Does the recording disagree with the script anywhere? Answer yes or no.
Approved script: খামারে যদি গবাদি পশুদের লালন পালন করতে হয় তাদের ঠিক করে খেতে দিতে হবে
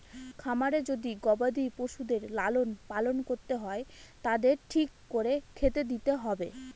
no